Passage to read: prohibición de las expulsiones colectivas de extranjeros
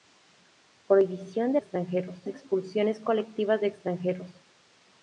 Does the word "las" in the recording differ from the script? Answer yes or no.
yes